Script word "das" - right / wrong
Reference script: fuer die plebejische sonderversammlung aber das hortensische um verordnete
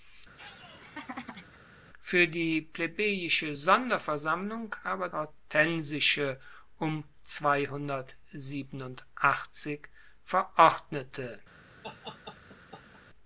wrong